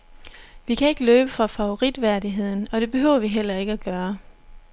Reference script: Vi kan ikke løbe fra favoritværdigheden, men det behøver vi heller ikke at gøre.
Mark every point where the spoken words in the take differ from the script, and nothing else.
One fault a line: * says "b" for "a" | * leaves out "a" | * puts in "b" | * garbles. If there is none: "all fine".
* says "og" for "men"